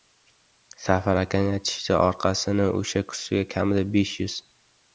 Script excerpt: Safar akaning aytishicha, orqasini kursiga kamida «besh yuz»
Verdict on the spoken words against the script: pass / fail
fail